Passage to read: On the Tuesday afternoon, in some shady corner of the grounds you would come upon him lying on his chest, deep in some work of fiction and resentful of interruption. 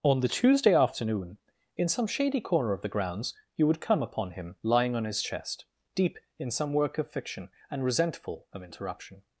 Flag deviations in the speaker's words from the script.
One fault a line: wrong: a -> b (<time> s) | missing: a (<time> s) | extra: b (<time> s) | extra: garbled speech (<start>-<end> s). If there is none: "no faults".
no faults